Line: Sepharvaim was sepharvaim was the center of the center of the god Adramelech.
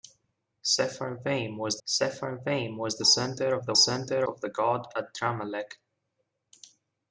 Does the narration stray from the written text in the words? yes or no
no